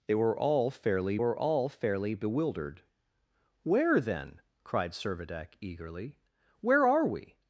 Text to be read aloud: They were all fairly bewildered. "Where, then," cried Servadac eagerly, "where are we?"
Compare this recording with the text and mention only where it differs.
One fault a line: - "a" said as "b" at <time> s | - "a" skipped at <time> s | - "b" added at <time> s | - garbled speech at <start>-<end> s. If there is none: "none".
- "were all fairly" added at 1.2 s